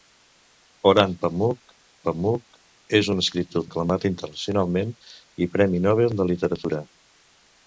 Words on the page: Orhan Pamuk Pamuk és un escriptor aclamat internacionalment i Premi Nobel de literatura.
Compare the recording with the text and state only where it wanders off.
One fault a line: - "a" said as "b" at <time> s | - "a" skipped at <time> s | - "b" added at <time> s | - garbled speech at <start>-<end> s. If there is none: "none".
none